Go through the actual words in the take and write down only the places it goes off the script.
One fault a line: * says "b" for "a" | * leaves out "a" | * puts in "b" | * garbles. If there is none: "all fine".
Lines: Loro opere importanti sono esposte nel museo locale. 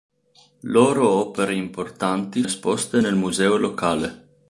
* leaves out "sono"